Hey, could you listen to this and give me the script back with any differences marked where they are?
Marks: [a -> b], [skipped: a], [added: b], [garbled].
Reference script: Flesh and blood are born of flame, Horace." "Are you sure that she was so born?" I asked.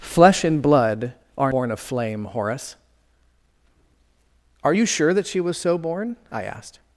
Flesh and blood are born of flame, Horace." "Are you sure that she was so born?" I asked.